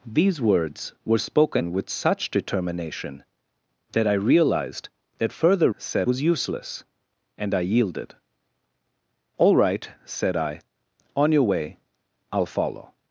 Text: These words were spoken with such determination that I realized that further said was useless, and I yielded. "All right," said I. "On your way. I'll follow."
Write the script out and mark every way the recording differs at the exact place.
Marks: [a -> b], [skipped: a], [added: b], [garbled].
These words were spoken with such determination that I realized that further said was useless, and I yielded. "All right," said I. "On your way. I'll follow."